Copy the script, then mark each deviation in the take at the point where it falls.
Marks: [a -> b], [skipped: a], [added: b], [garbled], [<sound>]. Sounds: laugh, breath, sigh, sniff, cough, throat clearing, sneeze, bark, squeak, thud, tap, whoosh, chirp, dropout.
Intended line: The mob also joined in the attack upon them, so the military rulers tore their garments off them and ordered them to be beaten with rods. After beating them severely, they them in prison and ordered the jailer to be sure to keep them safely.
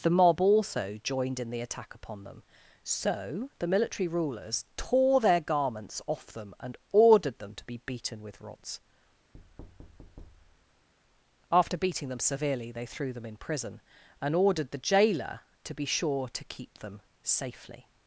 The mob also joined in the attack upon them, so the military rulers tore their garments off them and ordered them to be beaten with rods. [thud] After beating them severely, they [added: threw] them in prison and ordered the jailer to be sure to keep them safely.